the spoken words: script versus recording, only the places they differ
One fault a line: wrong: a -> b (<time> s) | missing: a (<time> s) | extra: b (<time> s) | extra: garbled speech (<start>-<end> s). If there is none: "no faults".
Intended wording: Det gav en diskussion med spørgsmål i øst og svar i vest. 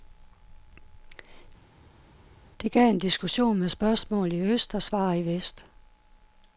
no faults